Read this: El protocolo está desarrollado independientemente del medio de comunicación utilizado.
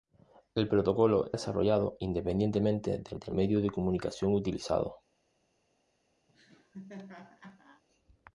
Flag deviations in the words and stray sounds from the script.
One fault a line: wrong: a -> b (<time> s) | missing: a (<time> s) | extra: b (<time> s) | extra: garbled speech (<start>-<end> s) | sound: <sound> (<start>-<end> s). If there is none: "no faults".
missing: está (1.3 s)
extra: del (3.1 s)
sound: laugh (6.3-7.8 s)